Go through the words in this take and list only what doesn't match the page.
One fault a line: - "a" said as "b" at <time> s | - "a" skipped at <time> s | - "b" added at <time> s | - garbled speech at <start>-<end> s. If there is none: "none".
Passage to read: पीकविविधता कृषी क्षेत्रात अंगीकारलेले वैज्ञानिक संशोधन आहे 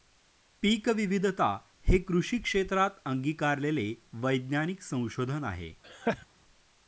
- "हे" added at 1.9 s